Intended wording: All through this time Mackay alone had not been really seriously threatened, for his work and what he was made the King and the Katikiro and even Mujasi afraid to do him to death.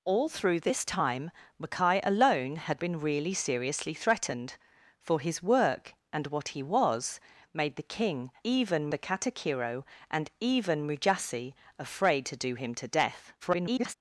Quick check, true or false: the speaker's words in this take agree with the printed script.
false